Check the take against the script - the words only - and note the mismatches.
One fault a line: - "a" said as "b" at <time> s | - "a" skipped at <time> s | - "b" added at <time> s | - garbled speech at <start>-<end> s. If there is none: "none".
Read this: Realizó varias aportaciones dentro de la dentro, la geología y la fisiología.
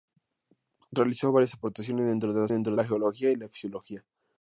none